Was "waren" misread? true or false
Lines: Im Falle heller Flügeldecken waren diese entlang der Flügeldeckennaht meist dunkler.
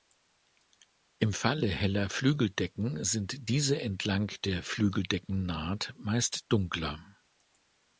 true